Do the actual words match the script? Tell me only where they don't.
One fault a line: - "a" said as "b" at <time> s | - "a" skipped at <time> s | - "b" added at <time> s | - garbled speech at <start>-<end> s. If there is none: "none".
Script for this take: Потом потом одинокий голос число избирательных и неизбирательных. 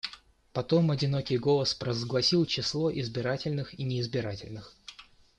- "потом" skipped at 0.9 s
- "провозгласил" added at 1.8 s